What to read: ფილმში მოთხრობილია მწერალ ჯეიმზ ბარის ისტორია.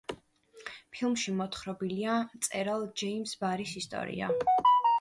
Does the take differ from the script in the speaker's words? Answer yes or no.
no